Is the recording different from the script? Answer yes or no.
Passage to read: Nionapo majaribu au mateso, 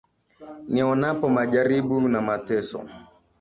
yes